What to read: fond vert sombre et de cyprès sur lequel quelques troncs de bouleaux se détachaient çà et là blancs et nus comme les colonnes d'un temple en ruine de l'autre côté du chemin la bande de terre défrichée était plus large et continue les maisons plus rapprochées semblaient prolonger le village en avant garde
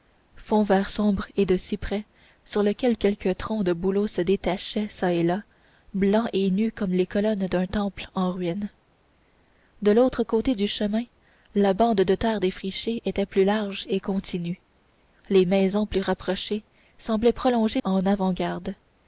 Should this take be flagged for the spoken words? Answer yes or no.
yes